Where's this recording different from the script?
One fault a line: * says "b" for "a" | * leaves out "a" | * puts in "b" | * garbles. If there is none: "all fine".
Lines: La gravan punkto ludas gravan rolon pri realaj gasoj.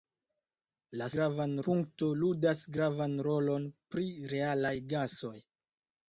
all fine